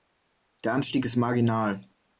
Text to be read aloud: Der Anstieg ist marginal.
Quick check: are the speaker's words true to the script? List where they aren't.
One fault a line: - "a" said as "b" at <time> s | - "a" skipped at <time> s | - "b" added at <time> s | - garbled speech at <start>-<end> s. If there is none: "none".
none